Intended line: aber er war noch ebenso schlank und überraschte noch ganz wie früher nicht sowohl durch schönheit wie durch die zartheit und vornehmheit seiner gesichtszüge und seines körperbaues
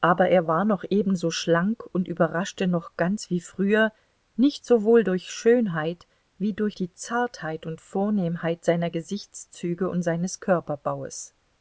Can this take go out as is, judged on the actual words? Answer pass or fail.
pass